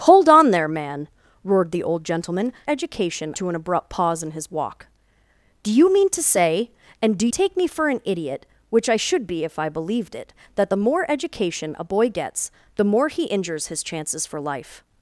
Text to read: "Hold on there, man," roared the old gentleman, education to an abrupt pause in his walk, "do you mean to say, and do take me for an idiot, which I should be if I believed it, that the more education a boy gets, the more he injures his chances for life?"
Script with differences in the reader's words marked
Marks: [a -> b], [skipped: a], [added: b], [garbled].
"Hold on there, man," roared the old gentleman, education to an abrupt pause in his walk, "do you mean to say, and do take me for an idiot, which I should be if I believed it, that the more education a boy gets, the more he injures his chances for life?"